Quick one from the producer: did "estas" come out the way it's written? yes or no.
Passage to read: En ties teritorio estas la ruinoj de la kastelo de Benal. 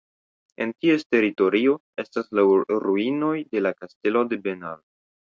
yes